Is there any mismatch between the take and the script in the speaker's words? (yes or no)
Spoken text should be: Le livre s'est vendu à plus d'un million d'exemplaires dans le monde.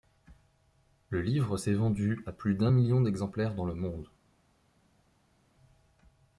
no